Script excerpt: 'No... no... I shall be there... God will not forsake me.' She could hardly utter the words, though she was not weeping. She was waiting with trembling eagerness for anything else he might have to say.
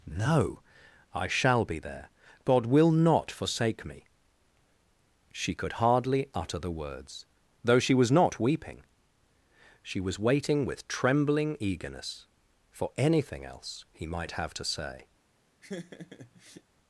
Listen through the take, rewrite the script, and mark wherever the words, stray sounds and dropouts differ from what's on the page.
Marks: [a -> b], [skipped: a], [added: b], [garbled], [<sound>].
'No... [skipped: no...] I shall be there... God will not forsake me.' She could hardly utter the words, though she was not weeping. She was waiting with trembling eagerness for anything else he might have to say. [laugh]